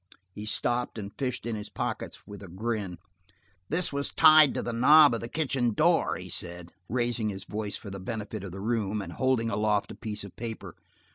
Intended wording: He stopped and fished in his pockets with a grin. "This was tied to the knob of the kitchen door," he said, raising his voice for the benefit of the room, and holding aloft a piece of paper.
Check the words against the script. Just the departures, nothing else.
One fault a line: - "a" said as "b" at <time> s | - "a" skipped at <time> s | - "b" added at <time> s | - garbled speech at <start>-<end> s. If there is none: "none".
none